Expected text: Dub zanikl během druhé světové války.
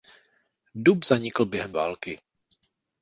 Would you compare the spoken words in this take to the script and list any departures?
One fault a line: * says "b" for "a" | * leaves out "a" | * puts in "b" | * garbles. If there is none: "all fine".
* leaves out "druhé světové"